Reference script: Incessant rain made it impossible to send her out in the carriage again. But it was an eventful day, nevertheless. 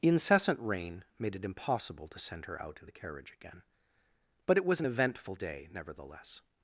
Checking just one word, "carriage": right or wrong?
right